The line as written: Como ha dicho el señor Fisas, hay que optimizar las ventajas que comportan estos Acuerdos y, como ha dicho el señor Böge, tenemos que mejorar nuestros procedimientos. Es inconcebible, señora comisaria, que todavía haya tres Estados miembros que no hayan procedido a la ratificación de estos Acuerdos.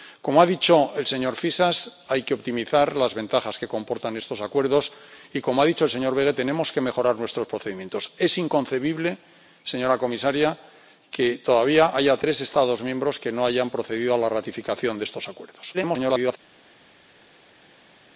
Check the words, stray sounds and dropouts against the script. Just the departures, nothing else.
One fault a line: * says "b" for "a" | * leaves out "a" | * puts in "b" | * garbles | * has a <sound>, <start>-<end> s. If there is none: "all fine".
* garbles